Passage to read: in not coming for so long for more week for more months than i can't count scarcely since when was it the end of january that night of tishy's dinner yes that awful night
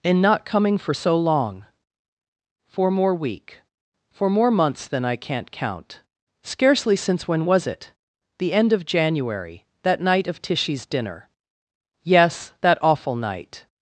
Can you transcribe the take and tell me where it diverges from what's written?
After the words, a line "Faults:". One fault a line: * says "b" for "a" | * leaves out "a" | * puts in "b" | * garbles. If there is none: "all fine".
in not coming for so long for more week for more months than i can't count scarcely since when was it the end of january that night of tishy's dinner yes that awful night
Faults:
all fine